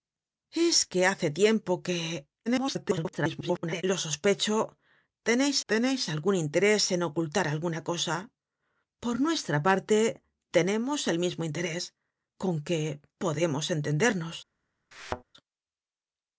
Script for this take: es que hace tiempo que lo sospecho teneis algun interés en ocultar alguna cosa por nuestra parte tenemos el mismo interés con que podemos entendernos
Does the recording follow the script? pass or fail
fail